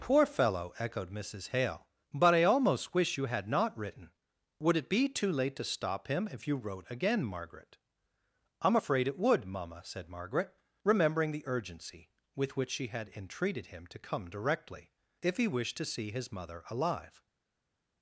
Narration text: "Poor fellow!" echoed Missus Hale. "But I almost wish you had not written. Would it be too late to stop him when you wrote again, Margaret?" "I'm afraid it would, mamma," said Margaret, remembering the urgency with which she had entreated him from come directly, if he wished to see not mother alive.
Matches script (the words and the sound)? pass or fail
fail